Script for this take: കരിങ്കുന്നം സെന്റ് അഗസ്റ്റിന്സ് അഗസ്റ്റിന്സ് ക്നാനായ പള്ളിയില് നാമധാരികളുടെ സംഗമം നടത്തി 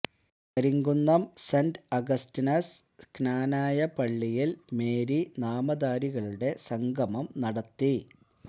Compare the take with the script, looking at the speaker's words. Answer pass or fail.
fail